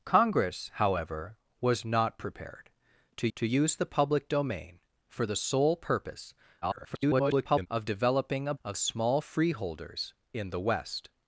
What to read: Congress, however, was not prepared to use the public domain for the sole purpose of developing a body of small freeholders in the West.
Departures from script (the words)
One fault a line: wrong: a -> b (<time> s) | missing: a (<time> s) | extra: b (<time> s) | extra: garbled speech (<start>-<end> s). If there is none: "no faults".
extra: to (3.4 s)
extra: garbled speech (6.6-7.7 s)
missing: body (8.5 s)